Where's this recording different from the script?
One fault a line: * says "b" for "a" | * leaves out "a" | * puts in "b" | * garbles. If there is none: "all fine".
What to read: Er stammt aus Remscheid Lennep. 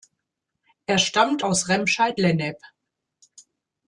all fine